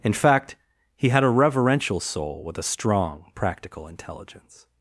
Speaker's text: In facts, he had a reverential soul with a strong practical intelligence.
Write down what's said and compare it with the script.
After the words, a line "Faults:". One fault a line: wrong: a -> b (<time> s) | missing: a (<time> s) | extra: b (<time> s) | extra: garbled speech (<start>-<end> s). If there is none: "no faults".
In fact, he had a reverential soul with a strong practical intelligence.
Faults:
wrong: facts -> fact (0.1 s)